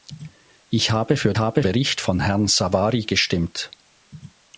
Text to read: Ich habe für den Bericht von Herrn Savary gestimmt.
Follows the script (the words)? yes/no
no